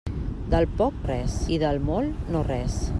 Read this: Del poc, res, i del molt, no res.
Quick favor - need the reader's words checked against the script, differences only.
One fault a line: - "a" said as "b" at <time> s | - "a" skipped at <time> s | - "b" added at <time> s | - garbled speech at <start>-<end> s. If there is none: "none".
none